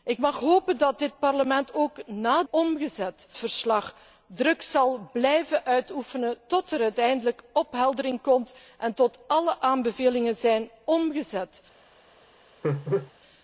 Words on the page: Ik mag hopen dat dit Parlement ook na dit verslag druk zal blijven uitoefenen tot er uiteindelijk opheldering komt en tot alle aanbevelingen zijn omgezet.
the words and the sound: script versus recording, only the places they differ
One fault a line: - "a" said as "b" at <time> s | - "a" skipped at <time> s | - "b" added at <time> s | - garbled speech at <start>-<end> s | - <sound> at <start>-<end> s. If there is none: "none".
- "dit" said as "omgezet" at 2.5 s
- laugh at 12.6-13.1 s